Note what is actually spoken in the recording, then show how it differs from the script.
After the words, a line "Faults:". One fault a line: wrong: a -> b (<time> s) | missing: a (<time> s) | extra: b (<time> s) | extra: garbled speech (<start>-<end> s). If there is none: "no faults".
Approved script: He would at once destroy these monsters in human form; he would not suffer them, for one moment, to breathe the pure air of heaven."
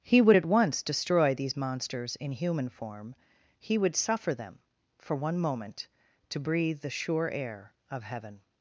He would at once destroy these monsters in human form; he would suffer them, for one moment, to breathe the sure air of heaven."
Faults:
missing: not (3.9 s)
wrong: pure -> sure (6.9 s)